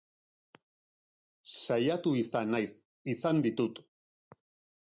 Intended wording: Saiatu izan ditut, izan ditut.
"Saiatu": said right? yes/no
yes